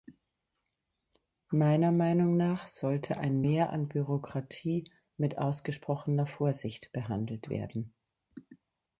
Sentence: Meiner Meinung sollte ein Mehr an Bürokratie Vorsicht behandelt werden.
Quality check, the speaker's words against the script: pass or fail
fail